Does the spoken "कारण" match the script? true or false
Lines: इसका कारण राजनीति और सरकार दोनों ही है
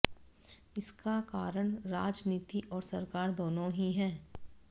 true